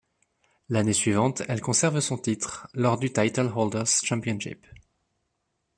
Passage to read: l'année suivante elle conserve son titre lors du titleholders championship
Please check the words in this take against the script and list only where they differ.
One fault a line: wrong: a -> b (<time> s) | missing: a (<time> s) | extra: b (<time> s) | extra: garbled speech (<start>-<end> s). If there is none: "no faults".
no faults